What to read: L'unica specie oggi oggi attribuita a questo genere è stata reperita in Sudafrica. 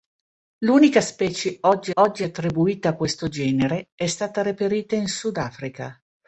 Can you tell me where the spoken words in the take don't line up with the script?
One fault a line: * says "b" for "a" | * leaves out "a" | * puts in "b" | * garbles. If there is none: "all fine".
all fine